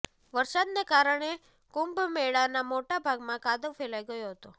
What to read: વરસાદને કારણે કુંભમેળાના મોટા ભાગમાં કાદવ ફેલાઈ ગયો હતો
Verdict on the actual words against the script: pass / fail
pass